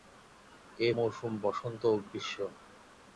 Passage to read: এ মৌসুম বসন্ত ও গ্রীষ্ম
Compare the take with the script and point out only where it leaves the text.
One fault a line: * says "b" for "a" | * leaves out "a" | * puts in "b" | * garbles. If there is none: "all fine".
all fine